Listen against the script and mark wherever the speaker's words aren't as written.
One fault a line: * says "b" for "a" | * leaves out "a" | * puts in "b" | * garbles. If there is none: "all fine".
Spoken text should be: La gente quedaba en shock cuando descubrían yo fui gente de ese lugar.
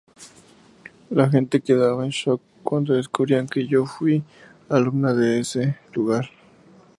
* puts in "que"
* says "alumna" for "gente"